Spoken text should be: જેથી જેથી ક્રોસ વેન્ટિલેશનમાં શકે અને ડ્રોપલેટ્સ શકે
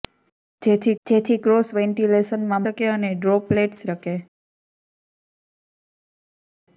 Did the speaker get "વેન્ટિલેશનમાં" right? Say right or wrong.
right